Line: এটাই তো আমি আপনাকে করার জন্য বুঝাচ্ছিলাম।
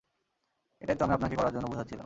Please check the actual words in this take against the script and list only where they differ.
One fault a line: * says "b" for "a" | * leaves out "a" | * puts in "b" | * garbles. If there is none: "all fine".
all fine